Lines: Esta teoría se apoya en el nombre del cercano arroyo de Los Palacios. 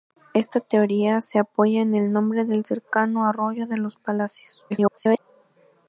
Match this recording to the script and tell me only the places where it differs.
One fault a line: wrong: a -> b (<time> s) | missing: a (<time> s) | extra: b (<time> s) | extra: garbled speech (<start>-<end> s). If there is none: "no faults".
extra: garbled speech (4.7-5.2 s)